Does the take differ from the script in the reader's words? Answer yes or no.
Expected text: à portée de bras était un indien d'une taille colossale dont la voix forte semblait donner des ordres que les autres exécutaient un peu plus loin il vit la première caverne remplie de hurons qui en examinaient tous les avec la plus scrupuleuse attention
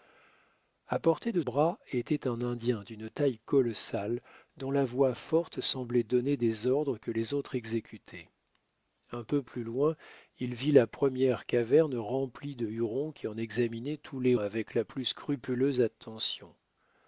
no